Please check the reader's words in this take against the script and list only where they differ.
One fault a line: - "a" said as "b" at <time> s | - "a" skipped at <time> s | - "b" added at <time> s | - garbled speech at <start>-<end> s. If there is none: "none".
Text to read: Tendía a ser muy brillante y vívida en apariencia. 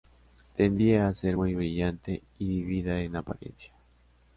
none